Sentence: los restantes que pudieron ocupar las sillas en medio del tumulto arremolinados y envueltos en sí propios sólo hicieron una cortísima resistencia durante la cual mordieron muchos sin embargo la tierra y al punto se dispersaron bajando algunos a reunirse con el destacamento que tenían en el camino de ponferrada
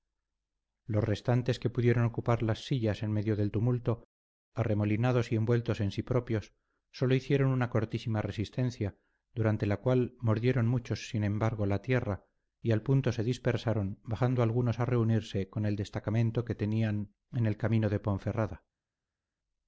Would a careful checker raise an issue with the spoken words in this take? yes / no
no